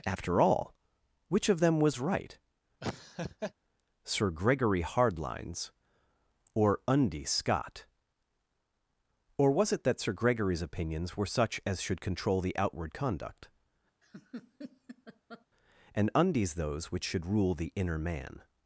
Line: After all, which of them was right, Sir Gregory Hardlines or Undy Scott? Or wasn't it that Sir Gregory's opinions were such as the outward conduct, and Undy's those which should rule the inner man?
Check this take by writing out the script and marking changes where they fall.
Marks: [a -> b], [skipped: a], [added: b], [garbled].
After all, which of them was right, Sir Gregory Hardlines or Undy Scott? Or [wasn't -> was] it that Sir Gregory's opinions were such as [added: should control] the outward conduct, and Undy's those which should rule the inner man?